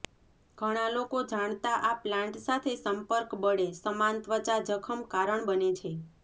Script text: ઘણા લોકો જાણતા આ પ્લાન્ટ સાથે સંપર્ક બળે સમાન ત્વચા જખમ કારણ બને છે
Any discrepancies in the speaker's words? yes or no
no